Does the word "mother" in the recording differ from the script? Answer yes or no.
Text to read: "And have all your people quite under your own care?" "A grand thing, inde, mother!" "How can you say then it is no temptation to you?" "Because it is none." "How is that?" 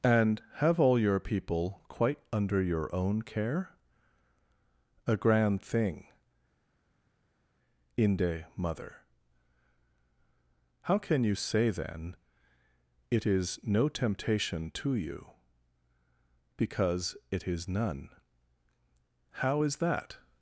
no